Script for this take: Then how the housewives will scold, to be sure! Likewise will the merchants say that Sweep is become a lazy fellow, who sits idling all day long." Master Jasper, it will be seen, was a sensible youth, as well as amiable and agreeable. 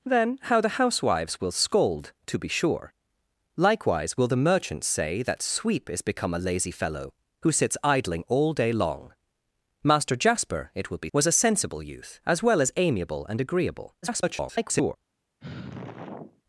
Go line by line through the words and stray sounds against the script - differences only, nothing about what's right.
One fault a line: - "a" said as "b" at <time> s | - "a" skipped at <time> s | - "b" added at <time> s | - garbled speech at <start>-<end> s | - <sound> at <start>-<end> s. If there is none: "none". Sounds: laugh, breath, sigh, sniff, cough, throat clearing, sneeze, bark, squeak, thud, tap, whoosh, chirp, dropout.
- "seen" skipped at 11.1 s
- garbled speech at 14.0-15.0 s
- sigh at 15.4-16.4 s